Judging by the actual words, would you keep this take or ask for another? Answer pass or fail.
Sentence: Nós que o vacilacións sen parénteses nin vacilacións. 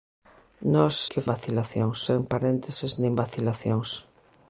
pass